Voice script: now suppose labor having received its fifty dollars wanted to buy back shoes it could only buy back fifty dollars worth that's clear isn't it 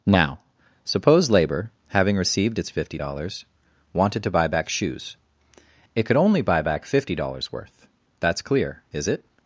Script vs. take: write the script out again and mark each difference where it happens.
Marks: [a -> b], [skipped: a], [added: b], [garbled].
now suppose labor having received its fifty dollars wanted to buy back shoes it could only buy back fifty dollars worth that's clear [isn't -> is] it